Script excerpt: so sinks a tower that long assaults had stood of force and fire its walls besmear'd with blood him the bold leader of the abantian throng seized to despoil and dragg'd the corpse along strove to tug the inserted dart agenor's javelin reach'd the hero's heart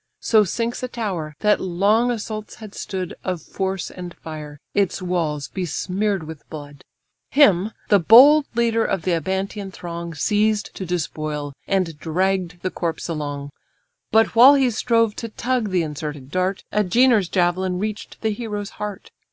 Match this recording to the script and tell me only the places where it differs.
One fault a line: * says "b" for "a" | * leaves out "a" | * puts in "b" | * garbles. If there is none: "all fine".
* puts in "but while he"